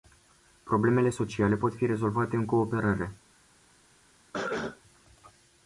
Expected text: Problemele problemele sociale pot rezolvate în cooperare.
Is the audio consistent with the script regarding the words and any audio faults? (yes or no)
no